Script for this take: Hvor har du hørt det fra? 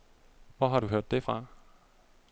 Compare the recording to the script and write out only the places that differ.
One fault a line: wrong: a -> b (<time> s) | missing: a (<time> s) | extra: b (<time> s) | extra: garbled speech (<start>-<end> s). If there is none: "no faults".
no faults